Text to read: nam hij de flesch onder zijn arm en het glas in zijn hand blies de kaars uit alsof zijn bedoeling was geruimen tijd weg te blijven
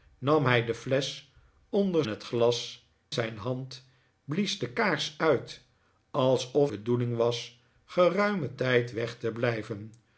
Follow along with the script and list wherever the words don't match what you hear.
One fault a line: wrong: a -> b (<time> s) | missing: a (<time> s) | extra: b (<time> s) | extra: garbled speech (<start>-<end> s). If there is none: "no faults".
missing: zijn arm en (2.0 s)
missing: in (2.9 s)
missing: zijn (6.7 s)